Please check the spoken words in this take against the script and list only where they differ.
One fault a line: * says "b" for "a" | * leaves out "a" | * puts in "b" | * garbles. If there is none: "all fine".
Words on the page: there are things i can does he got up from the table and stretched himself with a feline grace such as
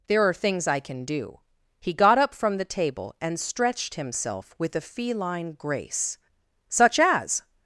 * says "do" for "does"